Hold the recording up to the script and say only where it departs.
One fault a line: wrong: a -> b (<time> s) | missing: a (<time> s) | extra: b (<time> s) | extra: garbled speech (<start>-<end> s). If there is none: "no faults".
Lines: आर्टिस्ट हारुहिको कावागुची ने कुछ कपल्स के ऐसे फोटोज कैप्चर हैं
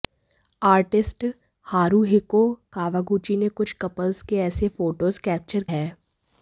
no faults